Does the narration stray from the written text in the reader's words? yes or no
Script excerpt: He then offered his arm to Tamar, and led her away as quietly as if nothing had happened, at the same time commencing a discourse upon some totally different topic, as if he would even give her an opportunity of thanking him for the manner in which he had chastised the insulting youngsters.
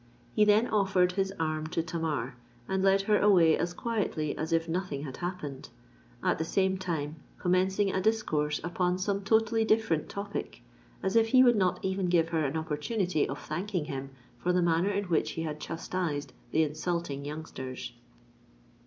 yes